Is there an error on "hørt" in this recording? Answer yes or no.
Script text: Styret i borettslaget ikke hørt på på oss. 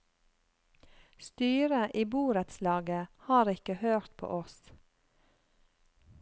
no